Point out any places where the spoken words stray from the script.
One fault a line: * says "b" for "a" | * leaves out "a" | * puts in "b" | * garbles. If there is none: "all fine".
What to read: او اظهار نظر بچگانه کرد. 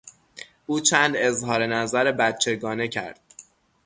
* puts in "چند"